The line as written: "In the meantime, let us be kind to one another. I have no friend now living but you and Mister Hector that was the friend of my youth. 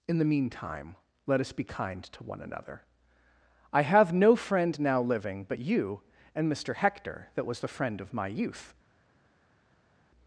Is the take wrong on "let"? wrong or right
right